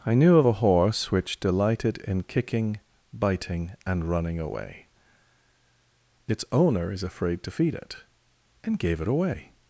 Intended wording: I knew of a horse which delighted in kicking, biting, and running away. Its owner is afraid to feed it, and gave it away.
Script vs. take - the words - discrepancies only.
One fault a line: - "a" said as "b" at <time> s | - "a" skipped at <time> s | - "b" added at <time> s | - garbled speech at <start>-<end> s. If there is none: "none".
none